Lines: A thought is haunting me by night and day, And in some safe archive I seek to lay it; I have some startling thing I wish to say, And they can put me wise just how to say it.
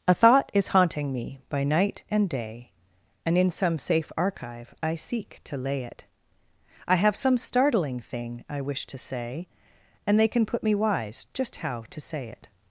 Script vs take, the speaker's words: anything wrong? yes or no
no